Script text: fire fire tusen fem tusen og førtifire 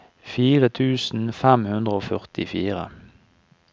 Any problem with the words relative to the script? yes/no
yes